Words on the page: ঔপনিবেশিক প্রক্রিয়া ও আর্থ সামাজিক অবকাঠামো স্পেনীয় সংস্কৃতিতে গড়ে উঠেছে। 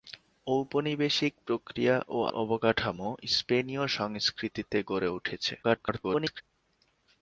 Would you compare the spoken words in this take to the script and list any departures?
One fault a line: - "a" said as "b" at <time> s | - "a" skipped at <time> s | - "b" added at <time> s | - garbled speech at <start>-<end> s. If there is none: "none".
- "আর্থ সামাজিক" skipped at 2.2 s
- garbled speech at 5.6-6.4 s